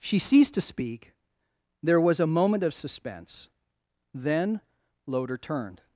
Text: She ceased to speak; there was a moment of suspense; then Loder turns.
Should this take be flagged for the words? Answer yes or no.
yes